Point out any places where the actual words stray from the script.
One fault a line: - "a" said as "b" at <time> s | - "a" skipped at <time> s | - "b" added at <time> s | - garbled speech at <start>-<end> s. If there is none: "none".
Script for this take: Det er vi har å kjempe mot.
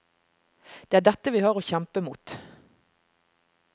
- "dette" added at 1.1 s